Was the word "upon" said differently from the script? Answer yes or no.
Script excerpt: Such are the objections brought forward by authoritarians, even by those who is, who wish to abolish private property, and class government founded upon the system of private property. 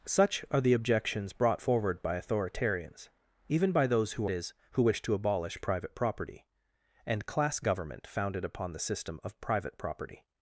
no